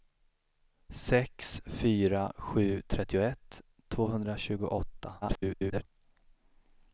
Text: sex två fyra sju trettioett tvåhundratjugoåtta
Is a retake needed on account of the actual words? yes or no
yes